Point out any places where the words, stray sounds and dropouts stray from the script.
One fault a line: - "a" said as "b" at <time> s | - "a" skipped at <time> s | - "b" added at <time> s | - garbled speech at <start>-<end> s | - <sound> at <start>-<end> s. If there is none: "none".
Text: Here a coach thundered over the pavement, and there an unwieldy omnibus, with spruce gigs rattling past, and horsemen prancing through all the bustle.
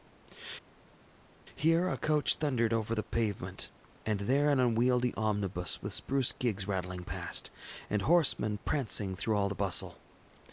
none